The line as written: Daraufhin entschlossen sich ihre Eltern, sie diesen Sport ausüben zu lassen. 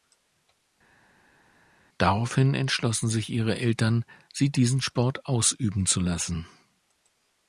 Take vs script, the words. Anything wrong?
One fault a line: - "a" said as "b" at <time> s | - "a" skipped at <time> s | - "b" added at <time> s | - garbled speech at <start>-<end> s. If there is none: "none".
none